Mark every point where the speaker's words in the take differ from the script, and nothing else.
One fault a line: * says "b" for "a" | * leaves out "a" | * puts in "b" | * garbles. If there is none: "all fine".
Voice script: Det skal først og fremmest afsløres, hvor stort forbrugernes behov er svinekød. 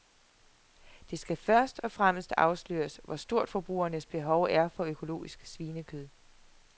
* puts in "for økologisk"